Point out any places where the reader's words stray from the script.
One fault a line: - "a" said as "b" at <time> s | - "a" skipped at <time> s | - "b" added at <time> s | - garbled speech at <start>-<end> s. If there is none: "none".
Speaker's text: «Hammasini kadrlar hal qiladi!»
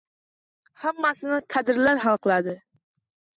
none